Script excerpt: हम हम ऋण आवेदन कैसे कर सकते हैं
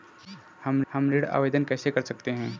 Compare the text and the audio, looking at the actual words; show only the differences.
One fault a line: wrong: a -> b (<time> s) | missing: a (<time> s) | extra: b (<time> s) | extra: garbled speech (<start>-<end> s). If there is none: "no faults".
no faults